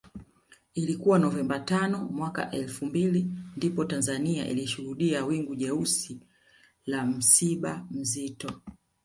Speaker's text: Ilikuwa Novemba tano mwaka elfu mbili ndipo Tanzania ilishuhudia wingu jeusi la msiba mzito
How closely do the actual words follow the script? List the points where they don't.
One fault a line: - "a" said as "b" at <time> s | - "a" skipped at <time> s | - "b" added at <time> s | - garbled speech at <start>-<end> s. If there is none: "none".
none